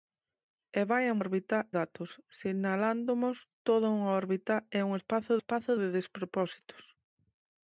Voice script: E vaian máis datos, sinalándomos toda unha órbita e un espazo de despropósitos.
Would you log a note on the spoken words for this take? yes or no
yes